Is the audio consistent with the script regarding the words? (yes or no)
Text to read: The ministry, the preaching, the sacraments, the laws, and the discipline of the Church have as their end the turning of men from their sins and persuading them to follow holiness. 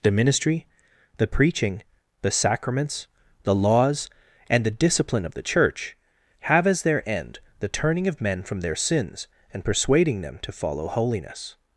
yes